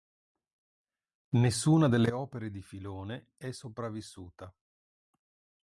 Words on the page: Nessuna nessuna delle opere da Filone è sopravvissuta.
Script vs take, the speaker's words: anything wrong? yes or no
yes